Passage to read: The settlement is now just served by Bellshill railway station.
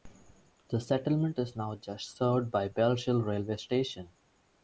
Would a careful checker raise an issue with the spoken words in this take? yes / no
no